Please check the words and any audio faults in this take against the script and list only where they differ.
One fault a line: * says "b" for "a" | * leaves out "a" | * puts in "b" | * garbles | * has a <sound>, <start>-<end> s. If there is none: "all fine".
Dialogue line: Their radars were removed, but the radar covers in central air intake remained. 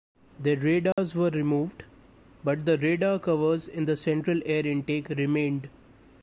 * has a dropout, 0.9-1.0 s
* puts in "the"